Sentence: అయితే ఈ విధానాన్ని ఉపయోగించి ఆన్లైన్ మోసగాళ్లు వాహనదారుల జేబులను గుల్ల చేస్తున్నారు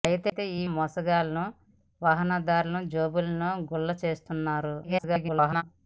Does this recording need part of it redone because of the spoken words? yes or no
yes